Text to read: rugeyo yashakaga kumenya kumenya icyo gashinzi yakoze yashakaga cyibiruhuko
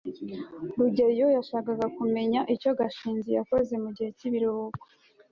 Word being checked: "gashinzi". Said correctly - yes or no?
yes